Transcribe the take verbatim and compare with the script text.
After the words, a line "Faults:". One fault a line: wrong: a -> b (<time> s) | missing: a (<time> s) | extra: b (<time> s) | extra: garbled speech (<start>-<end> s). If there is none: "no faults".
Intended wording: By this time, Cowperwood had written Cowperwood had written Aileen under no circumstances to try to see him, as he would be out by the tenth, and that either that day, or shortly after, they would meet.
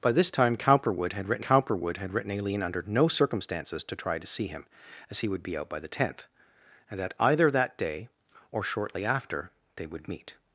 By this time, Cowperwood had written Cowperwood had written Aileen under no circumstances to try to see him, as he would be out by the tenth, and that either that day, or shortly after, they would meet.
Faults:
no faults